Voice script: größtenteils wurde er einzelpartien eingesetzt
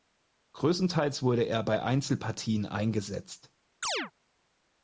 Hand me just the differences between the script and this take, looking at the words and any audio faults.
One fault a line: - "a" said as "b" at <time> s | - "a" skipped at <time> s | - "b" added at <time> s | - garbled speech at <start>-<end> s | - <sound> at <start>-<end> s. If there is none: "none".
- "bei" added at 1.6 s
- chirp at 3.8-4.1 s